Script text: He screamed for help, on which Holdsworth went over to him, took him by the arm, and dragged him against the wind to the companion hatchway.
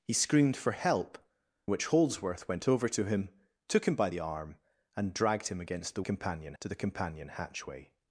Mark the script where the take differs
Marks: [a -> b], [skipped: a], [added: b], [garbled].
He screamed for help, [skipped: on] which Holdsworth went over to him, took him by the arm, and dragged him against the [wind -> companion] to the companion hatchway.